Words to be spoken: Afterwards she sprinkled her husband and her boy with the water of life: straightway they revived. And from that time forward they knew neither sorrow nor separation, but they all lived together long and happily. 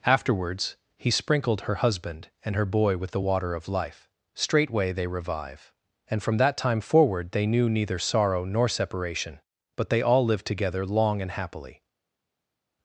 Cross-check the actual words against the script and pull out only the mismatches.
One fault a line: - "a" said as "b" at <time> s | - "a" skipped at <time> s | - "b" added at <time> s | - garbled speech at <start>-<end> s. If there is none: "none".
- "she" said as "he" at 1.0 s
- "revived" said as "revive" at 5.1 s